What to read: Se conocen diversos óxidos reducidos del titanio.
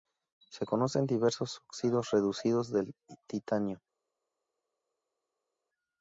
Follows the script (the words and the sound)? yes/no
yes